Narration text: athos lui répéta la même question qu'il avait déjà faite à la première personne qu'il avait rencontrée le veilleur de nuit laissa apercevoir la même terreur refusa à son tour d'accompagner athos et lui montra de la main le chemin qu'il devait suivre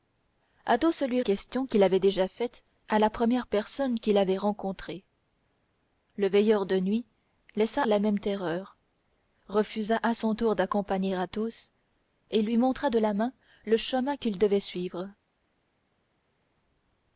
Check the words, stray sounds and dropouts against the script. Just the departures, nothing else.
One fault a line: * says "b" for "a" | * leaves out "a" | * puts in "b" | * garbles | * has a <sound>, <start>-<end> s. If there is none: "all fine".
* leaves out "répéta la même"
* leaves out "apercevoir"